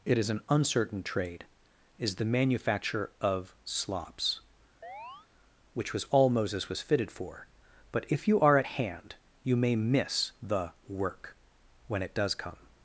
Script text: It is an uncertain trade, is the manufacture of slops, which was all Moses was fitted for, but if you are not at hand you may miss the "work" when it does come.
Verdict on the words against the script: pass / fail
fail